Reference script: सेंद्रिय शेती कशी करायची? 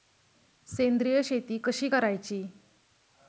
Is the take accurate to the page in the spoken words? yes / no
yes